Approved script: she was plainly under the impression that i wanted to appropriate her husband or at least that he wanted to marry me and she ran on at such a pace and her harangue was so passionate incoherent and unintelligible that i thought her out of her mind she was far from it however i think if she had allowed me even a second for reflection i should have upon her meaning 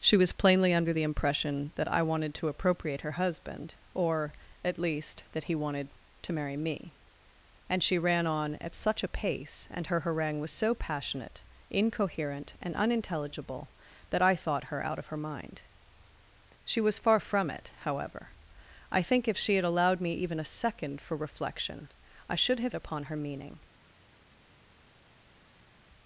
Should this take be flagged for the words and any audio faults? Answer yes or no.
no